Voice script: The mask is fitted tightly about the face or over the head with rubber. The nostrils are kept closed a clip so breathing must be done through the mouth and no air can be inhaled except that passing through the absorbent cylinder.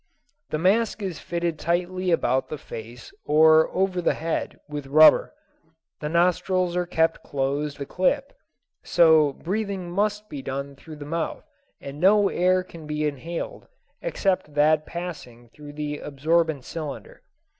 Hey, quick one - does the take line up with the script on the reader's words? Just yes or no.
yes